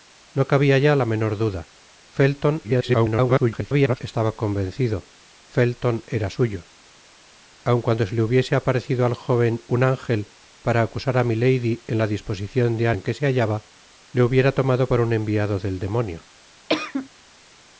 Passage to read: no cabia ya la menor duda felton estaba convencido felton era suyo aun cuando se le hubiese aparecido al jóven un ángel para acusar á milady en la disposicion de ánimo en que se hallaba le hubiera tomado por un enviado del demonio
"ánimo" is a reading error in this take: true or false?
true